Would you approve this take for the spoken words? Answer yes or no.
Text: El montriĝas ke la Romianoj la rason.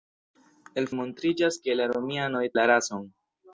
yes